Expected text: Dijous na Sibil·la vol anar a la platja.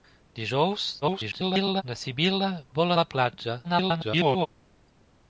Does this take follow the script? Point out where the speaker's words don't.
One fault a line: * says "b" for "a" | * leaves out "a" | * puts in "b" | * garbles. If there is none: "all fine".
* garbles
* leaves out "anar"
* garbles